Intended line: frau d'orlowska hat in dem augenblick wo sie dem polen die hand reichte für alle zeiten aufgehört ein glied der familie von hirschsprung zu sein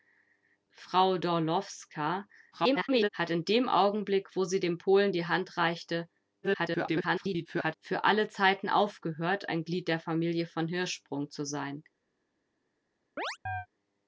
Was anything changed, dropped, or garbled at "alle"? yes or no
no